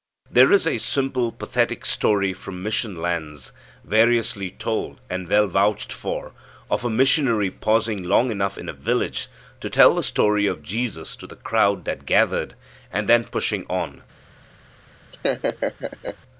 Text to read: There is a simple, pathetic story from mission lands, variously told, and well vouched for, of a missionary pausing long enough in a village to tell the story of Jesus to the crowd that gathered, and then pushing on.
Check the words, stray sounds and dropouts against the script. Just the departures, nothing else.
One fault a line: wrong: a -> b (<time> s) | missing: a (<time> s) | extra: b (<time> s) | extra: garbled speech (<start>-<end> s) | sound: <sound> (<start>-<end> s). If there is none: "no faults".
sound: laugh (15.1-16.2 s)